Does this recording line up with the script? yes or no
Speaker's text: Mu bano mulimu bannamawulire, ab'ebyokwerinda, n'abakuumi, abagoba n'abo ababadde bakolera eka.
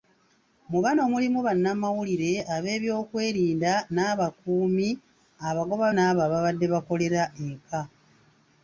yes